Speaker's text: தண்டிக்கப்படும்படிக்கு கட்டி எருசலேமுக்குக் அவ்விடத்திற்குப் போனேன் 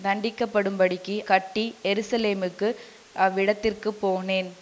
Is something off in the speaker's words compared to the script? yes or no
no